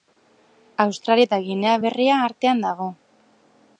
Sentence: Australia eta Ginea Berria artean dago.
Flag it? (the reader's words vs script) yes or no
no